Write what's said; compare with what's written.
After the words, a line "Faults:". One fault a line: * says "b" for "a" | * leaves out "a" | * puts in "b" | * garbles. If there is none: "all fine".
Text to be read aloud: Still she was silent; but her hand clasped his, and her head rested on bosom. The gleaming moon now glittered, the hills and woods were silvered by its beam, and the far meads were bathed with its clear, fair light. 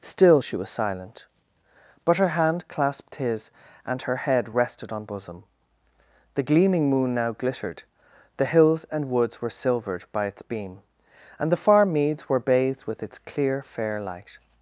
Still she was silent; but her hand clasped his, and her head rested on bosom. The gleaming moon now glittered, the hills and woods were silvered by its beam, and the far meads were bathed with its clear, fair light.
Faults:
all fine